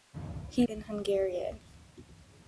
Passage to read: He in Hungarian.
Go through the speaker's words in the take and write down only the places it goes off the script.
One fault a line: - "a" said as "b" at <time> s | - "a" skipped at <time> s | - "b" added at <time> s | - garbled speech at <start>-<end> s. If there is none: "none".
none